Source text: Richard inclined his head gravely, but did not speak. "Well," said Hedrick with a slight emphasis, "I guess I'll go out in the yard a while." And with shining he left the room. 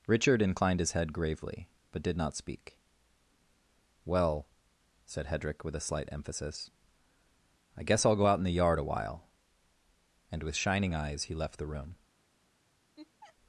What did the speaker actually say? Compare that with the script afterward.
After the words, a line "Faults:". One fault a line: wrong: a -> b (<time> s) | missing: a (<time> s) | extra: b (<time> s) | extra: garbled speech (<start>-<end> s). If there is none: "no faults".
Richard inclined his head gravely, but did not speak. "Well," said Hedrick with a slight emphasis, "I guess I'll go out in the yard a while." And with shining eyes he left the room.
Faults:
extra: eyes (10.9 s)